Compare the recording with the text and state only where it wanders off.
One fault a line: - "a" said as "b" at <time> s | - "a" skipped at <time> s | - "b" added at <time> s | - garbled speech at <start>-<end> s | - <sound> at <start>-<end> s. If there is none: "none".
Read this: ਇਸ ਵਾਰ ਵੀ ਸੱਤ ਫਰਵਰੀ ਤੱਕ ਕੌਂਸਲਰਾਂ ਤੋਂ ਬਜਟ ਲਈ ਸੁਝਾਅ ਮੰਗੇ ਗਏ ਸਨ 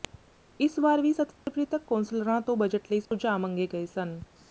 - dropout at 1.4-1.5 s
- dropout at 3.1-3.1 s